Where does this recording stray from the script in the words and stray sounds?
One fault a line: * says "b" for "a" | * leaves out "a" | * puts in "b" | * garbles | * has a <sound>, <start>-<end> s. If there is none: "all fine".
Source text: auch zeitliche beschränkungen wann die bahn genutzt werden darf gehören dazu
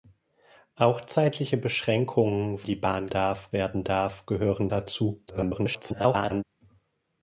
* leaves out "wann"
* says "darf" for "genutzt"
* garbles